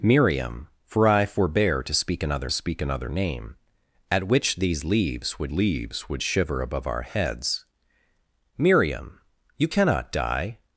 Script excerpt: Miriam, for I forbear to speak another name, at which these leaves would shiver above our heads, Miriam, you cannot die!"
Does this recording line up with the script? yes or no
no